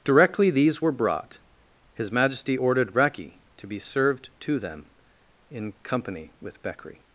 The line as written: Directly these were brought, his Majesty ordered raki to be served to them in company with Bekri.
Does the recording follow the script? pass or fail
pass